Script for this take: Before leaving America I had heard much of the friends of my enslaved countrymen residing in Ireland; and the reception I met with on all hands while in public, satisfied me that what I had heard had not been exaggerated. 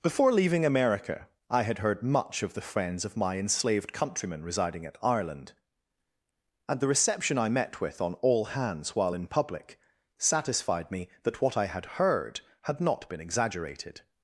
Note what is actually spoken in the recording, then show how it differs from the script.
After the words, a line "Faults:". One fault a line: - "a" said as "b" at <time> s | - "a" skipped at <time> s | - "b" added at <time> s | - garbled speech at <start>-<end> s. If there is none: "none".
Before leaving America I had heard much of the friends of my enslaved countrymen residing at Ireland; and the reception I met with on all hands while in public, satisfied me that what I had heard had not been exaggerated.
Faults:
- "in" said as "at" at 4.8 s